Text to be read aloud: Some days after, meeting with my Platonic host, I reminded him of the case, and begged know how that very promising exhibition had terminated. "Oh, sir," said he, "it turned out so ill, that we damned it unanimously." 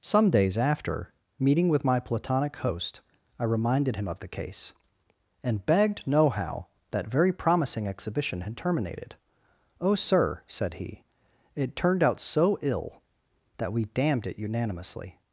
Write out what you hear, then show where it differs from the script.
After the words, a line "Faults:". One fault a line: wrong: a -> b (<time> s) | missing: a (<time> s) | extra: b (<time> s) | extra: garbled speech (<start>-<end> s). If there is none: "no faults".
Some days after, meeting with my Platonic host, I reminded him of the case, and begged know how that very promising exhibition had terminated. "Oh, sir," said he, "it turned out so ill, that we damned it unanimously."
Faults:
no faults